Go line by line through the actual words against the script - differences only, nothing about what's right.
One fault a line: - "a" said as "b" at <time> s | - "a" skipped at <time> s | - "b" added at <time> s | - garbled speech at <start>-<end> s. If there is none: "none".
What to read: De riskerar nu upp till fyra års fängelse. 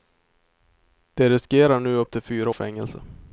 - "års" skipped at 2.5 s